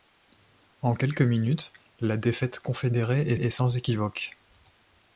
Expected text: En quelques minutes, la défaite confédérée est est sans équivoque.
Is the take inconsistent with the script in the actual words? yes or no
no